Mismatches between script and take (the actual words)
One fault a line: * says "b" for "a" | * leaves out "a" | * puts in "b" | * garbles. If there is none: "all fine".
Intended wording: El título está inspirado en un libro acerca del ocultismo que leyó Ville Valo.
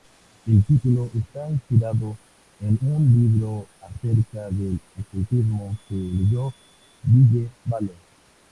all fine